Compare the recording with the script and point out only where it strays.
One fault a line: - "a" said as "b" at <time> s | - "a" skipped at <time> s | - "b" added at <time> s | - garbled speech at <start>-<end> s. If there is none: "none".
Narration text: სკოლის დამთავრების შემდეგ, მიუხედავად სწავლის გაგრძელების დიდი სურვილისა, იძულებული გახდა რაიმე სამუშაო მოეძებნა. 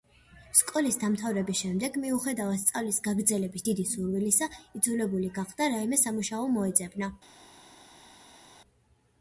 none